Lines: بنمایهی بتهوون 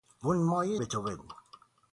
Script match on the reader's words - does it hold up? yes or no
yes